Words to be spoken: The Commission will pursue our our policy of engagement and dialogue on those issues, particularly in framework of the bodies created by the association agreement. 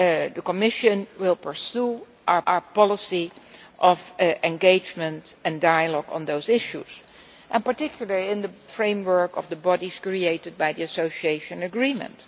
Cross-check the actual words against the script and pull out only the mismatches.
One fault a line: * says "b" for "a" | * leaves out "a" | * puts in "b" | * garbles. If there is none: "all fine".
all fine